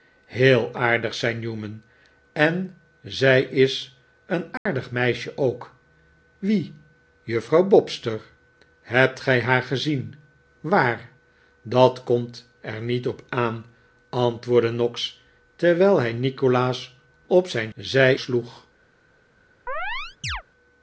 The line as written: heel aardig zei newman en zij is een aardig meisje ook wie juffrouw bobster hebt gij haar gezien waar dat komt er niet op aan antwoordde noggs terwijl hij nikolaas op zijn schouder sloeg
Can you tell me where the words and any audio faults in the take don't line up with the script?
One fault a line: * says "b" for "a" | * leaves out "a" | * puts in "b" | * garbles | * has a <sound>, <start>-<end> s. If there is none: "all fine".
* has a dropout, 4.6-4.7 s
* says "zij" for "schouder"
* has a chirp, 19.7-20.4 s